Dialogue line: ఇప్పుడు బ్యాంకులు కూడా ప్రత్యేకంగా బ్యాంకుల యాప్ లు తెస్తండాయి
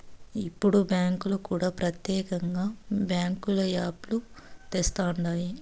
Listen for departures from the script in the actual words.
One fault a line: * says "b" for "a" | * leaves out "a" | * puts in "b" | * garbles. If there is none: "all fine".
all fine